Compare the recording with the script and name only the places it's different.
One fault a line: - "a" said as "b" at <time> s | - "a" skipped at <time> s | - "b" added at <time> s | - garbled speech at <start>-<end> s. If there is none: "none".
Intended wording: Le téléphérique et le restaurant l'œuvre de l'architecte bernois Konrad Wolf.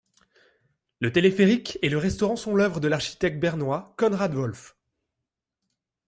- "sont" added at 2.4 s